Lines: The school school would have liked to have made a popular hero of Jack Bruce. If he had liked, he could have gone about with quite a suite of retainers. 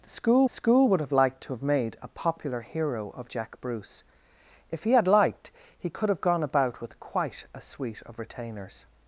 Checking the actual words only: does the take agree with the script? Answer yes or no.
yes